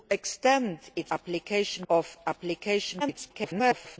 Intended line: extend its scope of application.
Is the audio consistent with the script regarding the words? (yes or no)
no